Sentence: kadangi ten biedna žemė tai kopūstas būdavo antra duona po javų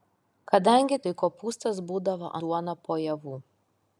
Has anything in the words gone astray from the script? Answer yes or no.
yes